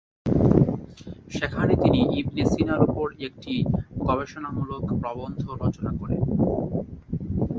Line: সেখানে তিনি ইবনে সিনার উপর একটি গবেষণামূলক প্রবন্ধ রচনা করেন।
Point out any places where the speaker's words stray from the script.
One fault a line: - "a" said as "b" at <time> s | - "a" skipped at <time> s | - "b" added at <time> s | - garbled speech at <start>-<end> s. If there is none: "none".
none